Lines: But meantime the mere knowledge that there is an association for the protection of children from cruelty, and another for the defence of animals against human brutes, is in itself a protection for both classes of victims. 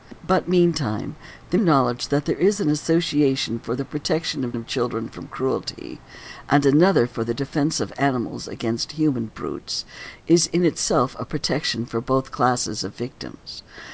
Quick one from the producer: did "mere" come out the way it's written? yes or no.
no